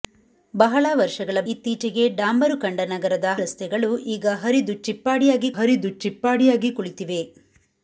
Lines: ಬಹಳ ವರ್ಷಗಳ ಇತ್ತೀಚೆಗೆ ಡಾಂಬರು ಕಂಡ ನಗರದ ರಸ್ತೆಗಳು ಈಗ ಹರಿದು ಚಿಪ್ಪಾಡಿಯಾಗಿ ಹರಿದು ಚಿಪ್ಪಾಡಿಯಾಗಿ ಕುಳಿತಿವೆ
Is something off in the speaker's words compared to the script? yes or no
no